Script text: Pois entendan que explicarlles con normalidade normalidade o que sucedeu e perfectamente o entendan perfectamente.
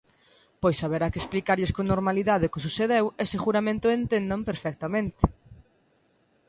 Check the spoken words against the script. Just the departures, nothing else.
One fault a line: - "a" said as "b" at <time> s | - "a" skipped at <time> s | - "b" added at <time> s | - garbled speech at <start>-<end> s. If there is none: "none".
- "entendan" said as "haberá" at 0.8 s
- "normalidade" skipped at 2.5 s
- "perfectamente" said as "seguramente" at 3.3 s